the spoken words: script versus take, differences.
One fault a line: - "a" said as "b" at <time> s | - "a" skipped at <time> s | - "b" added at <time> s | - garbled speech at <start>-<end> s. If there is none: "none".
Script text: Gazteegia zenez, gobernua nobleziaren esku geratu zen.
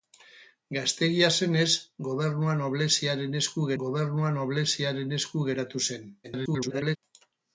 - "gobernua nobleziaren esku" added at 3.8 s
- garbled speech at 6.2-7.0 s